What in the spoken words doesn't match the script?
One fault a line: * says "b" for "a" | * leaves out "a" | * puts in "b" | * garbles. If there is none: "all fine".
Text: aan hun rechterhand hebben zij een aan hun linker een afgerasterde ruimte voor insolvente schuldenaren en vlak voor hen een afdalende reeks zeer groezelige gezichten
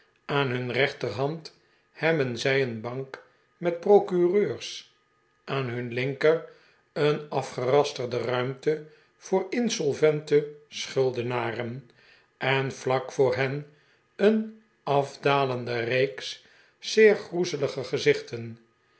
* puts in "bank met procureurs"